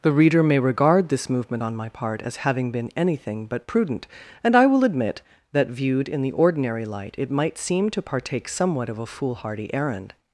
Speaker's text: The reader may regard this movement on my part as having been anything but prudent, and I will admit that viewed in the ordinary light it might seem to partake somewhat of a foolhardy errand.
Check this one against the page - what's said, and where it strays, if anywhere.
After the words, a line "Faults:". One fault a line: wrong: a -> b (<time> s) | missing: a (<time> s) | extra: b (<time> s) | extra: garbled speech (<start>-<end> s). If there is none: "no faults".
The reader may regard this movement on my part as having been anything but prudent, and I will admit that viewed in the ordinary light it might seem to partake somewhat of a foolhardy errand.
Faults:
no faults